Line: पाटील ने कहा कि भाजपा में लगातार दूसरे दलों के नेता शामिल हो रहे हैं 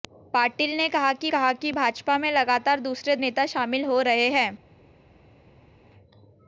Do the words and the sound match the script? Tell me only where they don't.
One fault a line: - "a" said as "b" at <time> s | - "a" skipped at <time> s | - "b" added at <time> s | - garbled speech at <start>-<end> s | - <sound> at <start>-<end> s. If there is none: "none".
- "कहा कि" added at 1.3 s
- "दलों के" skipped at 3.2 s